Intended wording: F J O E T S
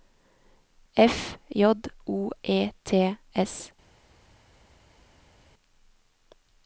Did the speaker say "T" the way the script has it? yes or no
yes